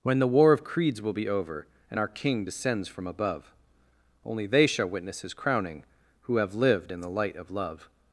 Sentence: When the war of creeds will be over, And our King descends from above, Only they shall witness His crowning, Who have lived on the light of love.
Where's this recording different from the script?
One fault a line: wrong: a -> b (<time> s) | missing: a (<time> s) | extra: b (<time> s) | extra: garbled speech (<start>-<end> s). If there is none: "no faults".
wrong: on -> in (6.9 s)